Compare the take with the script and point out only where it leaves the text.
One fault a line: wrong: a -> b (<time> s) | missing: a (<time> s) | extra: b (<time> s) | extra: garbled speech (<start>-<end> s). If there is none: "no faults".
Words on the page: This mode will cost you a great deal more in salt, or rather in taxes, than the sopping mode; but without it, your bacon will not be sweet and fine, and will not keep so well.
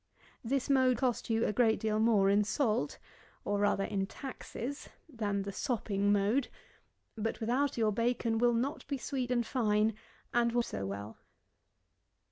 missing: will (1.0 s)
missing: it (7.8 s)
missing: not keep (10.6 s)